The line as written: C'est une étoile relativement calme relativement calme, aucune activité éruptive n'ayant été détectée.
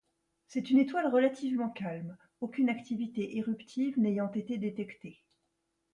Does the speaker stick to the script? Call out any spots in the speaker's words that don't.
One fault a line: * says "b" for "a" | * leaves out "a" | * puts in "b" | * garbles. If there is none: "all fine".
* leaves out "relativement calme"